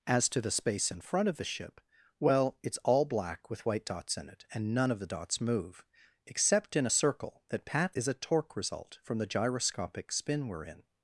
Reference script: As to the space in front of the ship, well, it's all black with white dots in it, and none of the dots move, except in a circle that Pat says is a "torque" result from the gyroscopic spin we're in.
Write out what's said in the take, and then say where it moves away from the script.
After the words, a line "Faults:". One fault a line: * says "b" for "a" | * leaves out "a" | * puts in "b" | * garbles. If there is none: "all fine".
As to the space in front of the ship, well, it's all black with white dots in it, and none of the dots move, except in a circle that Pat is a "torque" result from the gyroscopic spin we're in.
Faults:
* leaves out "says"